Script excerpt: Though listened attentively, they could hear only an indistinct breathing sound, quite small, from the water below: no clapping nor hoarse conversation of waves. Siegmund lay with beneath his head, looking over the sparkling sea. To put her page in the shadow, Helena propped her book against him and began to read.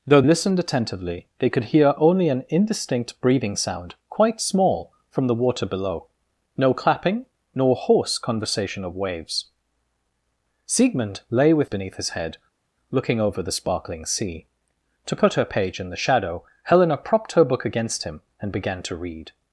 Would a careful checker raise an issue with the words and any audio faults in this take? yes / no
no